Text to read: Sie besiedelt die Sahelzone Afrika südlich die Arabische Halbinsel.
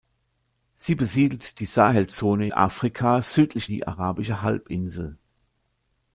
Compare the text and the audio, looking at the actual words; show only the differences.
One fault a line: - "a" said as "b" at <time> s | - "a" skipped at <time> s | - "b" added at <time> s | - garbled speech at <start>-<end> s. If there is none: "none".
none